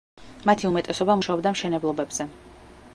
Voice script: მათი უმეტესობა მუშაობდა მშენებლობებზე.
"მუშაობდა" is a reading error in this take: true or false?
false